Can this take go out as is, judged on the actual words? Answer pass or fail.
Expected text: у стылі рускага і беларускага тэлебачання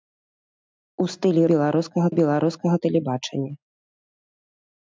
fail